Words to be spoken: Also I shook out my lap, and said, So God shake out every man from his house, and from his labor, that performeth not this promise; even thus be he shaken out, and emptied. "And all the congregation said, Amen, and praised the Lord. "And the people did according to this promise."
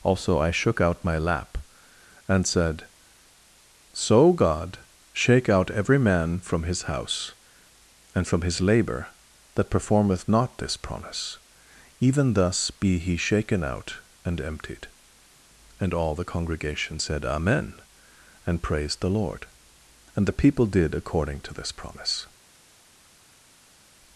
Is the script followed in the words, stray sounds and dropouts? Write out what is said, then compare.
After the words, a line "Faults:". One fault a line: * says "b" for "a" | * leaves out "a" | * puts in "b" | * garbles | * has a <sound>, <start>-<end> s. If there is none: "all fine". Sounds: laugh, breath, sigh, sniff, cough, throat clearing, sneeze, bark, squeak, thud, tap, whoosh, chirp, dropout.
Also I shook out my lap, and said, So God shake out every man from his house, and from his labor, that performeth not this promise; even thus be he shaken out, and emptied. "And all the congregation said, Amen, and praised the Lord. "And the people did according to this promise."
Faults:
all fine